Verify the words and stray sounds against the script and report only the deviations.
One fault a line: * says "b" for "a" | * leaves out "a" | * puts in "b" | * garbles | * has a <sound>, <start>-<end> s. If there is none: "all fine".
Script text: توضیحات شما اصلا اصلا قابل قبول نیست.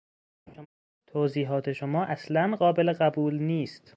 * has a laugh, 0.5-0.7 s
* leaves out "اصلا"